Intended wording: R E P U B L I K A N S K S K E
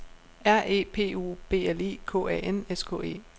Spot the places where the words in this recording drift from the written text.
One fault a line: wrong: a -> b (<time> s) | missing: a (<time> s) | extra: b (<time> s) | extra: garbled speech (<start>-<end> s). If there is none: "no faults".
missing: S K (3.0 s)